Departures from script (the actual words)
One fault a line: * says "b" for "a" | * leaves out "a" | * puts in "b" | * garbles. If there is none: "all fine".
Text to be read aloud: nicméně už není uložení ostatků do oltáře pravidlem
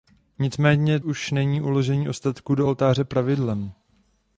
all fine